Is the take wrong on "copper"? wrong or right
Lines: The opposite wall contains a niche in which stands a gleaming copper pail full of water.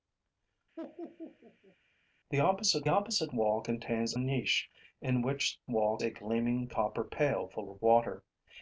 right